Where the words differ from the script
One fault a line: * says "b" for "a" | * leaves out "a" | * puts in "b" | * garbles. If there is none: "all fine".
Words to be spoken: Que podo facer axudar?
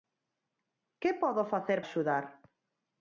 all fine